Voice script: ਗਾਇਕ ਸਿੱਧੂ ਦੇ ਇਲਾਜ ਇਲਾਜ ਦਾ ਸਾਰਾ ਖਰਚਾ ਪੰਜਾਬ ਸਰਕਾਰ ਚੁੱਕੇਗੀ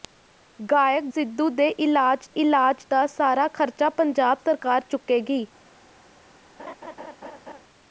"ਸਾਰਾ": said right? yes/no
yes